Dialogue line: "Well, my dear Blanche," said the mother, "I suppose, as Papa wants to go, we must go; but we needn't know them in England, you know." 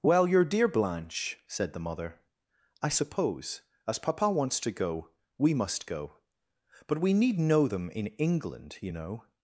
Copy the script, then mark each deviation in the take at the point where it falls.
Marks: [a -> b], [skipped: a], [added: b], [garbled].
"Well, [my -> your] dear Blanche," said the mother, "I suppose, as Papa wants to go, we must go; but we [needn't -> need] know them in England, you know."